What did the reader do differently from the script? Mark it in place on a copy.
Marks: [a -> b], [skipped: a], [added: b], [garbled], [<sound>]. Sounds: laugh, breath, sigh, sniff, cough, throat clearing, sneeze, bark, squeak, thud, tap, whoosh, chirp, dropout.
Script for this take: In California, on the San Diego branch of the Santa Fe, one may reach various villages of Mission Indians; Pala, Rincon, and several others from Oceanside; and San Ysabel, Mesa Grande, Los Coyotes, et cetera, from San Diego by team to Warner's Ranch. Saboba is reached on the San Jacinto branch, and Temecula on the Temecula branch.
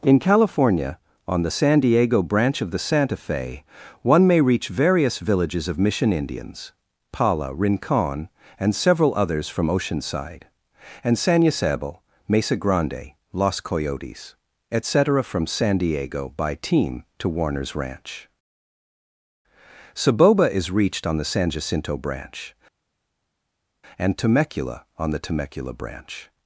In California, on the San Diego branch of the Santa Fe, one may reach various villages of Mission Indians; Pala, Rincon, and several others from Oceanside; and San Ysabel, Mesa Grande, Los Coyotes, et cetera, from San Diego by team to Warner's Ranch. Saboba is reached on the San Jacinto branch, and Temecula on the Temecula branch.